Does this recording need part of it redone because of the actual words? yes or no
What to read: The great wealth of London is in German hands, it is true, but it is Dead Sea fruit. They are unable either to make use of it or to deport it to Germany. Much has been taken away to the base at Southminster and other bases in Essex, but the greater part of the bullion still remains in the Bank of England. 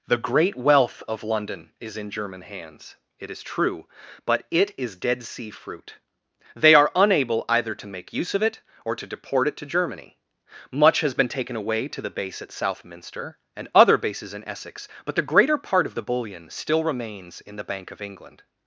no